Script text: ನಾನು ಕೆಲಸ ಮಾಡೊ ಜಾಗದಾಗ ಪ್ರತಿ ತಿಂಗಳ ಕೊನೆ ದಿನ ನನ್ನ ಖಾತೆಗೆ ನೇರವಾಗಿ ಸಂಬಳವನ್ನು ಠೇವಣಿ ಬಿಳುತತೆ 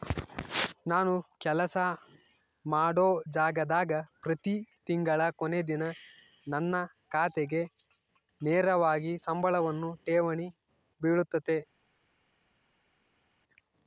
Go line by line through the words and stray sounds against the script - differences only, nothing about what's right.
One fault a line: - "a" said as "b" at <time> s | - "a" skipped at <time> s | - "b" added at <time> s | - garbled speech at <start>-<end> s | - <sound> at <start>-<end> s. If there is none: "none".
none